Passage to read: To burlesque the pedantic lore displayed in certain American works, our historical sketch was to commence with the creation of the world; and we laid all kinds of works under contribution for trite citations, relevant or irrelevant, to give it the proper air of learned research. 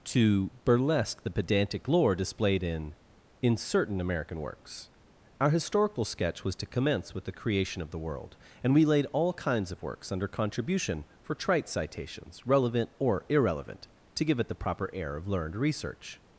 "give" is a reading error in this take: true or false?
false